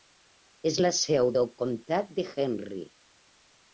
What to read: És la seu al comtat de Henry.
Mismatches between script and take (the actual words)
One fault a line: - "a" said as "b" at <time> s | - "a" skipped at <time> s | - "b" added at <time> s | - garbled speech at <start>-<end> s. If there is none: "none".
- "al" said as "del" at 1.4 s